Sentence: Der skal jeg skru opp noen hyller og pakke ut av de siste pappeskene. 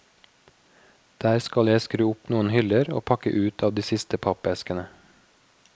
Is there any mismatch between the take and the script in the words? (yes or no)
no